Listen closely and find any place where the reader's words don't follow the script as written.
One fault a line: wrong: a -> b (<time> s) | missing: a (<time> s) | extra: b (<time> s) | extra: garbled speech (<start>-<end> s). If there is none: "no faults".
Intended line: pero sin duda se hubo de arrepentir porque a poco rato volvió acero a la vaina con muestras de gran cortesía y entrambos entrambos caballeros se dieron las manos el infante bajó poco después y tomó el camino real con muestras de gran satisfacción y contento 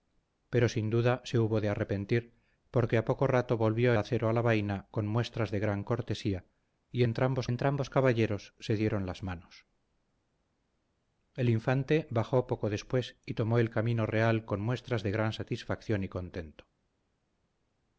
no faults